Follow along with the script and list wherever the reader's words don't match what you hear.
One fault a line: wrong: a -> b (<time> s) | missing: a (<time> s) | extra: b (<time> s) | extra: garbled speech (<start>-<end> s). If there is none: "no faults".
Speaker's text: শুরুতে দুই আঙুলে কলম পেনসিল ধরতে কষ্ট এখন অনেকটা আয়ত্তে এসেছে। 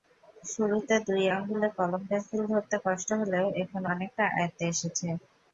extra: হলেও (3.2 s)